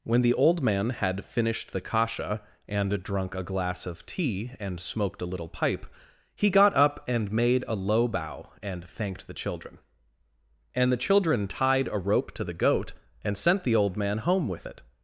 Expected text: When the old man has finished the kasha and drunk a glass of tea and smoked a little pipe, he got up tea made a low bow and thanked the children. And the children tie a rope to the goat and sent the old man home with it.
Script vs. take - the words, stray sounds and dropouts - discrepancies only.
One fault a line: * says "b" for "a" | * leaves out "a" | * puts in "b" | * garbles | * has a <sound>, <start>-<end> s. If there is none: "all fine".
* says "had" for "has"
* says "and" for "tea"
* says "tied" for "tie"